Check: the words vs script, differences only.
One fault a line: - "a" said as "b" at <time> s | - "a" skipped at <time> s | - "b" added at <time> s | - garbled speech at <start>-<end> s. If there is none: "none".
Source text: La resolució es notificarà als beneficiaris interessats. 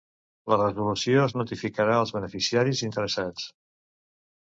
none